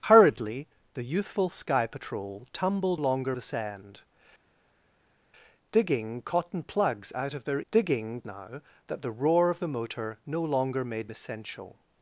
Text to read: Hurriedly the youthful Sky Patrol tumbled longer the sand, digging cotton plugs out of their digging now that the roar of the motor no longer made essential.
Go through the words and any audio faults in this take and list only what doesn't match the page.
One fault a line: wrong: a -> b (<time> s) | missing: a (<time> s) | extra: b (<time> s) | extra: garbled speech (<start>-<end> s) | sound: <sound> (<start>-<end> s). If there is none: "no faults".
no faults